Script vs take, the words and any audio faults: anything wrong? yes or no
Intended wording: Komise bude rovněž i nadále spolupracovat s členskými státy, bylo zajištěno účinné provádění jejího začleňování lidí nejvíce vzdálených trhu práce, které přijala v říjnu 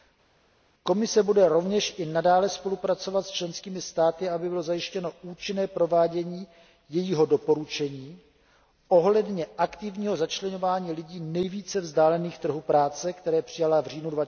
yes